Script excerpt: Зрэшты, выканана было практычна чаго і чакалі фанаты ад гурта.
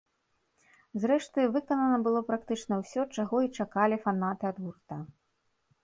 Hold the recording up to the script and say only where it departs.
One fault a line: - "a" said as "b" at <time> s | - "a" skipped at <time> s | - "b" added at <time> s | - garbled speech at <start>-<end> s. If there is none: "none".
- "ўсё" added at 2.8 s